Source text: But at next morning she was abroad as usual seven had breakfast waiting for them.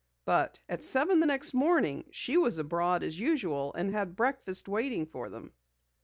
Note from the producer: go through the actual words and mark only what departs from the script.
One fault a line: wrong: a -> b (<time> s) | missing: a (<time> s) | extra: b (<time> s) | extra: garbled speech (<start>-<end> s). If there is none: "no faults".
extra: seven the (0.8 s)
wrong: seven -> and (3.7 s)